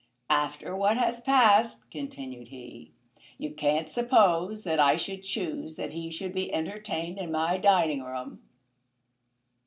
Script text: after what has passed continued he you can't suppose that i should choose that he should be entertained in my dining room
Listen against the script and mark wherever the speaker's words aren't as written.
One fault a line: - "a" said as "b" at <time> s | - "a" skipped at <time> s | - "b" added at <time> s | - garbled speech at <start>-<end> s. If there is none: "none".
none